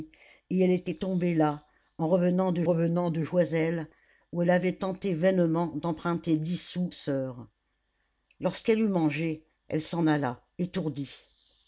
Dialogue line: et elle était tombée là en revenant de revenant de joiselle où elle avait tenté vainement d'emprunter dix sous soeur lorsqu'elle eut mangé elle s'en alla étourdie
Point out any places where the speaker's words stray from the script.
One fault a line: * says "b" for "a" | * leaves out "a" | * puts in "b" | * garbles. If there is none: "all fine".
all fine